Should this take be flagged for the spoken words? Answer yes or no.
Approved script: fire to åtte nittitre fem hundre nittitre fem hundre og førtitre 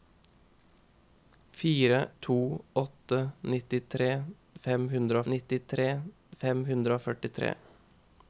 no